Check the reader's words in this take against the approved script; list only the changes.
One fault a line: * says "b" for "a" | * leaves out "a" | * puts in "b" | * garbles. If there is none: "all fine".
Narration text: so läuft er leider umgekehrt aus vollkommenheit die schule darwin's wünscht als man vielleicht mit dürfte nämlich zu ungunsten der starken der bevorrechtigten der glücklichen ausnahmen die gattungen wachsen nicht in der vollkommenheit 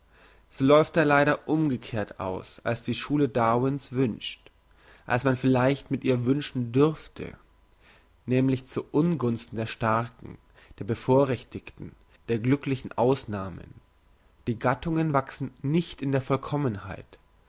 * says "als" for "vollkommenheit"
* puts in "ihr wünschen"